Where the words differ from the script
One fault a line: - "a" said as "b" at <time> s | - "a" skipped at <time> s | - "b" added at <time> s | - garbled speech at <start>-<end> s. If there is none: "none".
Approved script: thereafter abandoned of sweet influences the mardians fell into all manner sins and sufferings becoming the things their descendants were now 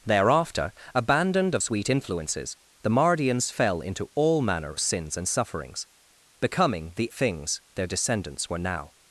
none